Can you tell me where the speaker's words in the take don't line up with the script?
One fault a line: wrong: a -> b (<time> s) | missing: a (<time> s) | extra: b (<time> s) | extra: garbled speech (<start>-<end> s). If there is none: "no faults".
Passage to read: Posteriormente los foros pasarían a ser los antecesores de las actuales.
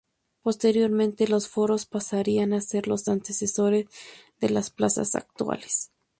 extra: plazas (4.7 s)